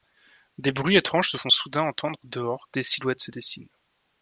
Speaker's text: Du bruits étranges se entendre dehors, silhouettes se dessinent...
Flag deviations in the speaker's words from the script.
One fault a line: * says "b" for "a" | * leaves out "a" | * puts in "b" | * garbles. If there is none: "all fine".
* says "Des" for "Du"
* puts in "font soudain"
* puts in "des"